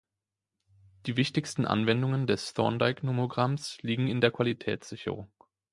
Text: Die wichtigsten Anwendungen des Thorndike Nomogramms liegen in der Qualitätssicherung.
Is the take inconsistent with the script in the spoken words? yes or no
no